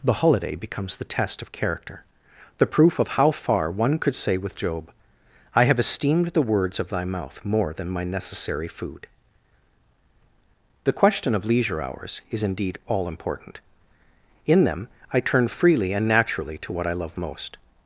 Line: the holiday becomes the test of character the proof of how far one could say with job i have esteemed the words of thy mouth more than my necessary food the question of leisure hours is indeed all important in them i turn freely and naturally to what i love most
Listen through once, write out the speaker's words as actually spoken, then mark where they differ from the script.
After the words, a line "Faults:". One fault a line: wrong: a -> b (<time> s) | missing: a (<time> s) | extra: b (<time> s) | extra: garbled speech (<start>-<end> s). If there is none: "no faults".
the holiday becomes the test of character the proof of how far one could say with job i have esteemed the words of thy mouth more than my necessary food the question of leisure hours is indeed all important in them i turn freely and naturally to what i love most
Faults:
no faults